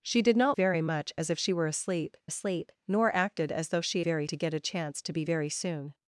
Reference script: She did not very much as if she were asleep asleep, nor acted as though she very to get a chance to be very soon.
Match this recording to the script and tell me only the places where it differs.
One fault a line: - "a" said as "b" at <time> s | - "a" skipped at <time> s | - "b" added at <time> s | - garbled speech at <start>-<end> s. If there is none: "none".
none